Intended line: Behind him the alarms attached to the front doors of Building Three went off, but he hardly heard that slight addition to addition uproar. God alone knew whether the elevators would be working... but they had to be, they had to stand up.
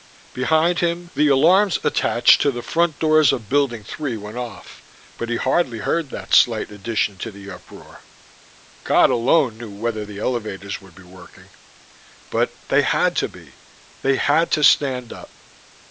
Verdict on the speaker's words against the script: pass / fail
fail